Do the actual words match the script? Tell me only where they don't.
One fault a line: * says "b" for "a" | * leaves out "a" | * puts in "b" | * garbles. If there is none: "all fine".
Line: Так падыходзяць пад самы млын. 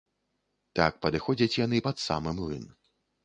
* puts in "яны"